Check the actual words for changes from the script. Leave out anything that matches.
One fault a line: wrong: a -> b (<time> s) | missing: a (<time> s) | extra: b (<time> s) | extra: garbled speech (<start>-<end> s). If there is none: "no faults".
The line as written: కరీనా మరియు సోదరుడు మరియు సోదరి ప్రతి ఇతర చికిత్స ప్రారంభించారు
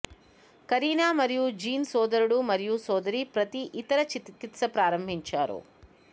extra: జీన్ (1.6 s)